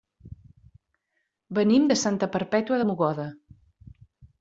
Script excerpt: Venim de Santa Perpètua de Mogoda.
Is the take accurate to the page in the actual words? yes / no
yes